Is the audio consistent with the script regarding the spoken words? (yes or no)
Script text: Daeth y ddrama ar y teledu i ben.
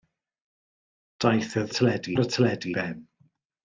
no